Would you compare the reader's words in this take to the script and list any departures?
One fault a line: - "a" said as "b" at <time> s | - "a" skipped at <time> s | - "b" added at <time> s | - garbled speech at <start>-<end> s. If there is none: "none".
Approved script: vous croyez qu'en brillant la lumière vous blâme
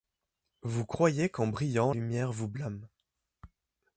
- "la" skipped at 1.9 s